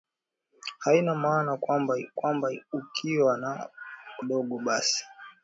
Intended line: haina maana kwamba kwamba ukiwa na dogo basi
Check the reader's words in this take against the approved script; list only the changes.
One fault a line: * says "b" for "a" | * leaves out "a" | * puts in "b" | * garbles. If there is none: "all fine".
all fine